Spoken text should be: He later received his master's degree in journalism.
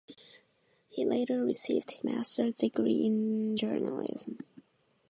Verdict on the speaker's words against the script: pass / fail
fail